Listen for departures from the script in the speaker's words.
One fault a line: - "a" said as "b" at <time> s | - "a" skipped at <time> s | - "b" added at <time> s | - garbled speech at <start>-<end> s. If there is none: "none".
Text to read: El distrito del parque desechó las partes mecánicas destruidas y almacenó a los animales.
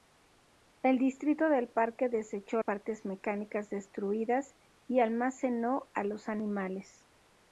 - "las" skipped at 2.6 s